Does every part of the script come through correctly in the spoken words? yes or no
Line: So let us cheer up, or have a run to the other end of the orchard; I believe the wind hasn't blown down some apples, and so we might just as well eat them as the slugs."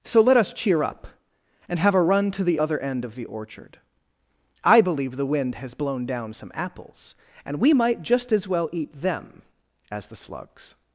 no